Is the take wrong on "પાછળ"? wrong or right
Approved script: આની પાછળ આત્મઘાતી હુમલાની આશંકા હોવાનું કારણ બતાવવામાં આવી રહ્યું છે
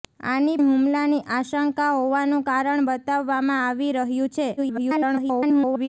wrong